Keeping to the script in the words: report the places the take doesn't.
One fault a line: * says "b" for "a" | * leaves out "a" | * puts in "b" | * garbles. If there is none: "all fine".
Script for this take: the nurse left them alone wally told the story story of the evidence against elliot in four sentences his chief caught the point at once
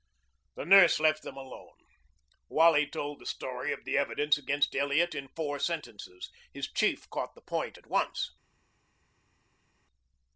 * leaves out "story"